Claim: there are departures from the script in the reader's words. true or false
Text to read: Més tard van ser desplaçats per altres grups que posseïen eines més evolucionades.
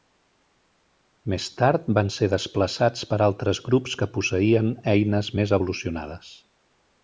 false